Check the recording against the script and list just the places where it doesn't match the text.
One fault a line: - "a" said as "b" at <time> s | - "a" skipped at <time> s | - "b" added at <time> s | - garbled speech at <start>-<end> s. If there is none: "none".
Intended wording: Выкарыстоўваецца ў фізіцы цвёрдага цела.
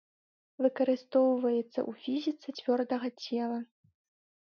none